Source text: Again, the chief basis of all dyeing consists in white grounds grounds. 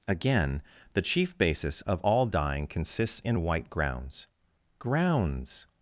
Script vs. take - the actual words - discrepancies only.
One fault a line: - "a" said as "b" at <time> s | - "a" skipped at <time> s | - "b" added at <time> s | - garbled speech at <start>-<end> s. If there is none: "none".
none